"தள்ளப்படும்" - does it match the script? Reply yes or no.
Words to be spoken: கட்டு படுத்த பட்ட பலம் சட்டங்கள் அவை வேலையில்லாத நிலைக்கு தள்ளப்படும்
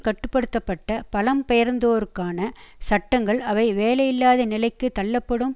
yes